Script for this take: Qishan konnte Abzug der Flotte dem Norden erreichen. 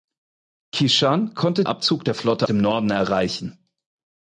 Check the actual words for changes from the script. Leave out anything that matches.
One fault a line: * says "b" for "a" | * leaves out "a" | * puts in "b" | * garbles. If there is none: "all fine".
all fine